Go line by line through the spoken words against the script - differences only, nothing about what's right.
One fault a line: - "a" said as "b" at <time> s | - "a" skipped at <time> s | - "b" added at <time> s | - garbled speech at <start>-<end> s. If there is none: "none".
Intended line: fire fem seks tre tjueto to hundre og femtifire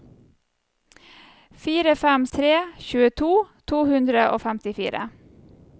- "seks" skipped at 2.2 s